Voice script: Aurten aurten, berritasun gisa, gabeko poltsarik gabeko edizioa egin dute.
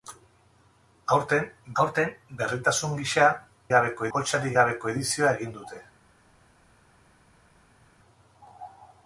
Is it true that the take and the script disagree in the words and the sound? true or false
false